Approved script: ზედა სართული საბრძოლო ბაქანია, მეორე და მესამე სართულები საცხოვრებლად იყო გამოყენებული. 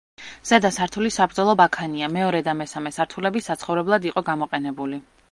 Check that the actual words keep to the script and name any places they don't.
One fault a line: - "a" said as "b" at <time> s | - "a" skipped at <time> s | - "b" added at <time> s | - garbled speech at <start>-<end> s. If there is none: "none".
none